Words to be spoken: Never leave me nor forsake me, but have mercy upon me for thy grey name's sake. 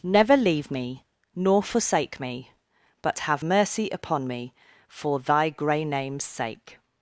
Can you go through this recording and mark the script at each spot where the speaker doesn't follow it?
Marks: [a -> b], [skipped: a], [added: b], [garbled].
Never leave me nor forsake me, but have mercy upon me for thy grey name's sake.